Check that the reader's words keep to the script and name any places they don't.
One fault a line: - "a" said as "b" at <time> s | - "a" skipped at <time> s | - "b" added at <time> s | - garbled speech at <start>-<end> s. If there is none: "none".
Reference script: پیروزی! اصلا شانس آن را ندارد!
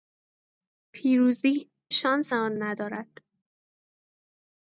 - "اصلا" skipped at 1.7 s
- "را" skipped at 2.6 s